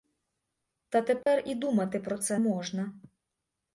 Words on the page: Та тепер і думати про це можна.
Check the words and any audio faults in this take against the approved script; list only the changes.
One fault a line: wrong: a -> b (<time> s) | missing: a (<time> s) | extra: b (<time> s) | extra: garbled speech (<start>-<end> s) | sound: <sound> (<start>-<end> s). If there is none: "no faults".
sound: dropout (1.2-1.3 s)